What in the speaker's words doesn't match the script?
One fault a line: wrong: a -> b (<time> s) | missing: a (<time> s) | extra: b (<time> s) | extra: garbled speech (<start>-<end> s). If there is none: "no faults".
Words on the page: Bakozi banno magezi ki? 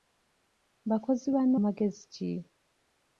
no faults